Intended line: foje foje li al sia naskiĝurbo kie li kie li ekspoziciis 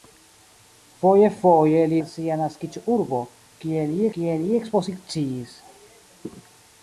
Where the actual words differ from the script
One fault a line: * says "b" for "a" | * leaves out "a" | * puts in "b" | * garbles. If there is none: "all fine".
all fine